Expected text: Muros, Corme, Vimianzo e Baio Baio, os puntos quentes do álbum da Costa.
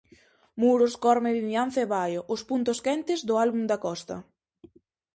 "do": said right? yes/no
yes